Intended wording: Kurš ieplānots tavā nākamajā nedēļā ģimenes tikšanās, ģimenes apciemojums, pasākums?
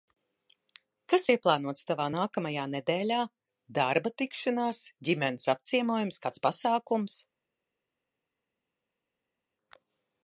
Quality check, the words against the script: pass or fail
fail